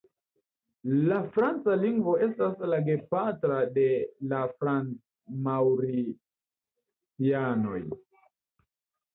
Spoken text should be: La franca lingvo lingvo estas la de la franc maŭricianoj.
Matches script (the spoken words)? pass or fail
fail